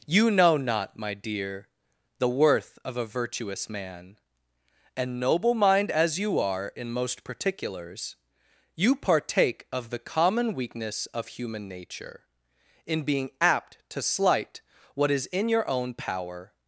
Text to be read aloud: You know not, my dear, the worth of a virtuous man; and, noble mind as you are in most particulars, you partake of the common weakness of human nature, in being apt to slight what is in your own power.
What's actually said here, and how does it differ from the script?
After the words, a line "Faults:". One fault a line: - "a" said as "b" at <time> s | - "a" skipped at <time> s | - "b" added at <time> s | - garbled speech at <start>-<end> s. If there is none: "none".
You know not, my dear, the worth of a virtuous man; and, noble mind as you are in most particulars, you partake of the common weakness of human nature, in being apt to slight what is in your own power.
Faults:
none